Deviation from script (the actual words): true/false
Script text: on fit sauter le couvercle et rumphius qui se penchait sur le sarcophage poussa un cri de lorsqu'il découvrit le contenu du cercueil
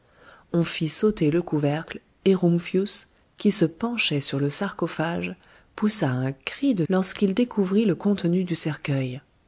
false